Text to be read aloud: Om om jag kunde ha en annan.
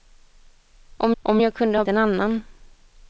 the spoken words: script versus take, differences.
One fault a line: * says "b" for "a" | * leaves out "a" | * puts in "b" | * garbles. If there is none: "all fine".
all fine